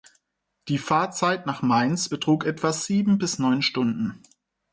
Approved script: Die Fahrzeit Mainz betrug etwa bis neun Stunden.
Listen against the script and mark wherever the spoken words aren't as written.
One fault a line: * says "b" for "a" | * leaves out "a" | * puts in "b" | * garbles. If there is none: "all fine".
* puts in "nach"
* puts in "sieben"